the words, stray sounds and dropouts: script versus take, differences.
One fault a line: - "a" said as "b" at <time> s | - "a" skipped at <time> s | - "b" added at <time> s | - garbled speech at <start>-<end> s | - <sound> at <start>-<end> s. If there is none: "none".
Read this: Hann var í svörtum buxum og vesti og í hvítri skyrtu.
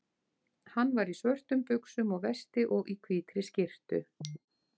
none